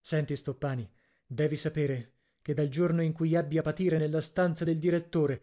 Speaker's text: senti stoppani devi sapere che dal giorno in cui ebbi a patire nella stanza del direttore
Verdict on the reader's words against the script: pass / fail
pass